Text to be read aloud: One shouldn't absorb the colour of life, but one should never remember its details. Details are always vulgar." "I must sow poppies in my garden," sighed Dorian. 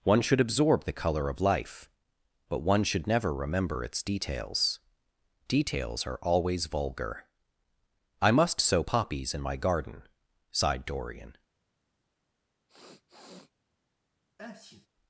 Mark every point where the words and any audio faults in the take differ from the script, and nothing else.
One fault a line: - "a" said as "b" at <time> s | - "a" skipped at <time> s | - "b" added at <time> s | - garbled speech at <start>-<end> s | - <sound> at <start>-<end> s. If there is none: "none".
- "shouldn't" said as "should" at 0.2 s
- sniff at 12.7-13.5 s
- sneeze at 14.4-14.9 s